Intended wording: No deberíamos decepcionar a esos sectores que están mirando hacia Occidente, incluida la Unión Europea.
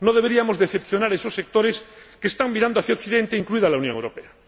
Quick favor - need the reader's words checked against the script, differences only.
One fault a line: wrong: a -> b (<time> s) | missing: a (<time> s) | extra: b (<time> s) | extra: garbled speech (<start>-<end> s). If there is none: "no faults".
no faults